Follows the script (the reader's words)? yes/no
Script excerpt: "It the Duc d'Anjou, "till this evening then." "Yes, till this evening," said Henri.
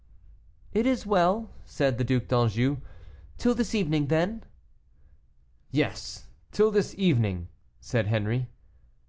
no